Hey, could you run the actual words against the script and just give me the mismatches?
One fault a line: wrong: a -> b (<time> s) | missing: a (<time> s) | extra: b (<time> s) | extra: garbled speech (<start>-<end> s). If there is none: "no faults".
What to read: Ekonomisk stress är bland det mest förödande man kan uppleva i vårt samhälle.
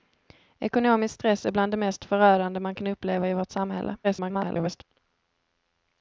extra: garbled speech (4.0-4.8 s)